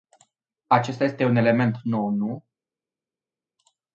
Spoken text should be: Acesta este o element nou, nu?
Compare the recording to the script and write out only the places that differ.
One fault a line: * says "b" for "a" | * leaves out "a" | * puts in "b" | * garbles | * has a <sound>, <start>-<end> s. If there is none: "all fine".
* says "un" for "o"